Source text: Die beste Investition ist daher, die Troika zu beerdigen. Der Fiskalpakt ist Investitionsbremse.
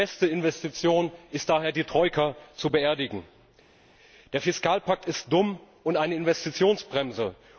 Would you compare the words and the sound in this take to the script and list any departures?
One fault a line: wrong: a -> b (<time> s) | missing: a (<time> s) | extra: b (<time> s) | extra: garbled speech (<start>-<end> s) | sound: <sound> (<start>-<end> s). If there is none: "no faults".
extra: dumm und eine (5.3 s)